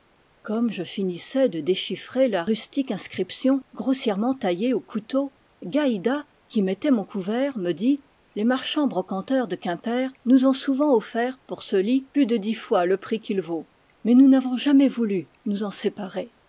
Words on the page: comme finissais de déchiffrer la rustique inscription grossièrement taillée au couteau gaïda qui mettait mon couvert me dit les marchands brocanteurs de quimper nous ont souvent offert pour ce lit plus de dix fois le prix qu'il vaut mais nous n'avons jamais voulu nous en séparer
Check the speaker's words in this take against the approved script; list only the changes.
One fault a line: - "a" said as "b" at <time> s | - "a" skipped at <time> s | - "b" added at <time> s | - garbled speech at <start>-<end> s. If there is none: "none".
- "je" added at 0.7 s